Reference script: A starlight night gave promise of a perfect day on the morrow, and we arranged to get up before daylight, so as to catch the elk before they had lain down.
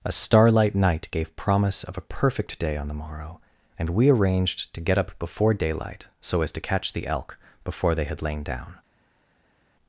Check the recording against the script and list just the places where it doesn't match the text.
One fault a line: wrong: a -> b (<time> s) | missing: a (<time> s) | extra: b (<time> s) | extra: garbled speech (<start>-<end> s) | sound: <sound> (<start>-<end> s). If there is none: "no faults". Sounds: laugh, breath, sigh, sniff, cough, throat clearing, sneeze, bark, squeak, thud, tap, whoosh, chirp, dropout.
no faults